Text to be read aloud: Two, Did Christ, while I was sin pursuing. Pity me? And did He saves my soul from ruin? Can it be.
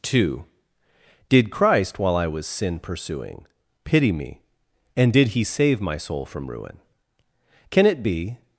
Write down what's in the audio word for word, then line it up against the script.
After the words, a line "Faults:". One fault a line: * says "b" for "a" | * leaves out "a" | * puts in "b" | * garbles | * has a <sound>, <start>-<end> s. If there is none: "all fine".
Two, Did Christ, while I was sin pursuing. Pity me? And did He save my soul from ruin? Can it be.
Faults:
* says "save" for "saves"